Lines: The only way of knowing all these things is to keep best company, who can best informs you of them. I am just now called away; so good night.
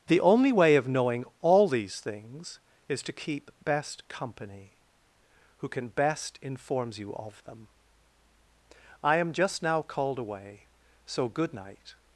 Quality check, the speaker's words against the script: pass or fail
pass